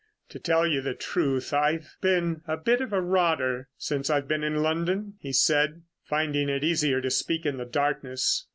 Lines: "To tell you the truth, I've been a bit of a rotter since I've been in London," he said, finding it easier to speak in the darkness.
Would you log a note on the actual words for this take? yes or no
no